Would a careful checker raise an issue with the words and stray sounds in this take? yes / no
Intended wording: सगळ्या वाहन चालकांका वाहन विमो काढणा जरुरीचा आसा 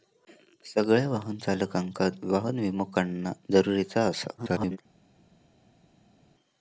yes